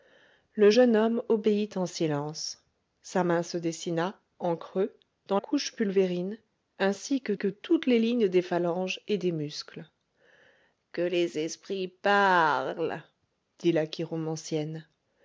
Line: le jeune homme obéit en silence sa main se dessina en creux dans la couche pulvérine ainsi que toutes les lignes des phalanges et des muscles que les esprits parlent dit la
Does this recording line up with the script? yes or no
no